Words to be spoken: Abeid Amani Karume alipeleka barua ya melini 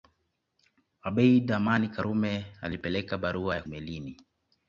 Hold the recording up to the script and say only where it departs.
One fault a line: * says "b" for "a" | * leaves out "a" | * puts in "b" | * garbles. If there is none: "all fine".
all fine